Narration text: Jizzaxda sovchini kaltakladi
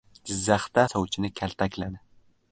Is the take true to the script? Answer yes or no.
yes